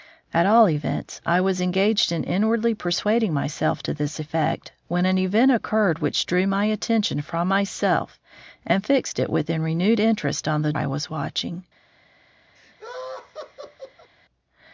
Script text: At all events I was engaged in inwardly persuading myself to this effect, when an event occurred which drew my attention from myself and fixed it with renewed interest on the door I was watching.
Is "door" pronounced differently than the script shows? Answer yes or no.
yes